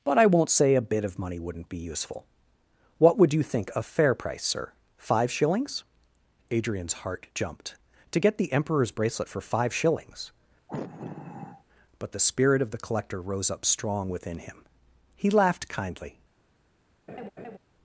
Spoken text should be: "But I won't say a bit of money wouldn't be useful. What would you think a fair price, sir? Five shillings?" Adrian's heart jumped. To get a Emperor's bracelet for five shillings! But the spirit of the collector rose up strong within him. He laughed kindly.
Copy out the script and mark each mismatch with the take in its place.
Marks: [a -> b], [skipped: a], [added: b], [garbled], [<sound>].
"But I won't say a bit of money wouldn't be useful. What would you think a fair price, sir? Five shillings?" Adrian's heart jumped. To get [a -> the] Emperor's bracelet for five shillings! [sigh] But the spirit of the collector rose up strong within him. He laughed kindly. [laugh]